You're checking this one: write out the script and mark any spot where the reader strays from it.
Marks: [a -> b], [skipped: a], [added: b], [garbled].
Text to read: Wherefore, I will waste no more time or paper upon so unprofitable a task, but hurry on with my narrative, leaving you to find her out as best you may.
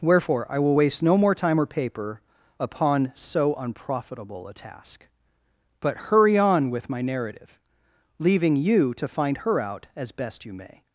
Wherefore, I will waste no more time or paper upon so unprofitable a task, but hurry on with my narrative, leaving you to find her out as best you may.